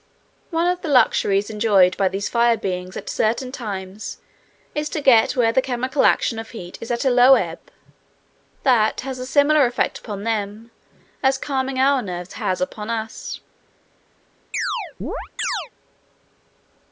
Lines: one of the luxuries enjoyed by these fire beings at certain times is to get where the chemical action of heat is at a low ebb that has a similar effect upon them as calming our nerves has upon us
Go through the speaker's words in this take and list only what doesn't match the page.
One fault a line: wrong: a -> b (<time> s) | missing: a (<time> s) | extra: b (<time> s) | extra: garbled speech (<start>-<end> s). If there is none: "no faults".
no faults